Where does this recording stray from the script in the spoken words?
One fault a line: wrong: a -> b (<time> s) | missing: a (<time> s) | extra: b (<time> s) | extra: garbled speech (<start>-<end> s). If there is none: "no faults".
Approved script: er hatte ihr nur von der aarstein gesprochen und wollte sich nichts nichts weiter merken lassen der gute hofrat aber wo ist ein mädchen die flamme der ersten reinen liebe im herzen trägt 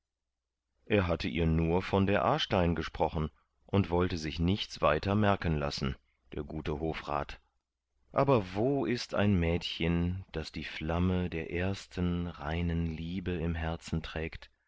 missing: nichts (4.8 s)
extra: das (10.3 s)